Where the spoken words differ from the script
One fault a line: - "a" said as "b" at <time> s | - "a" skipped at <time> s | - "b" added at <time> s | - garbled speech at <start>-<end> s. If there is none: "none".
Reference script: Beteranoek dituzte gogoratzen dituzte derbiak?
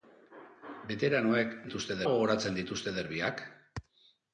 none